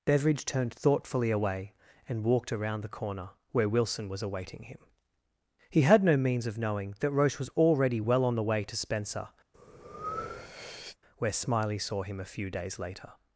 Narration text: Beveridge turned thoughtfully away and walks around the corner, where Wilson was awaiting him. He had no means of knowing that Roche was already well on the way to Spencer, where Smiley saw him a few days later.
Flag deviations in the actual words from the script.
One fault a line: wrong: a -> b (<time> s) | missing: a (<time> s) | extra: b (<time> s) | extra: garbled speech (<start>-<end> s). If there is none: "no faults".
wrong: walks -> walked (2.2 s)